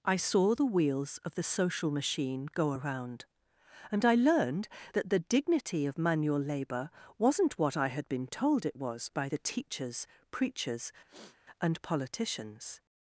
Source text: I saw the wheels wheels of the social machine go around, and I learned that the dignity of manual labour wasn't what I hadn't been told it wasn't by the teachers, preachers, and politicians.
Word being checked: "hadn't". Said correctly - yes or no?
no